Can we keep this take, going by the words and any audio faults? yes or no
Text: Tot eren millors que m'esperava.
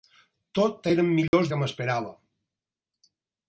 no